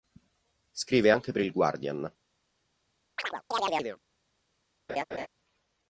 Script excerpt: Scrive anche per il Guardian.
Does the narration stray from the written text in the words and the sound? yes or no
yes